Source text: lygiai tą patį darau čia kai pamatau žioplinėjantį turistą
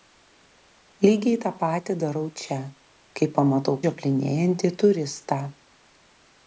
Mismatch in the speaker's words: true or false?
false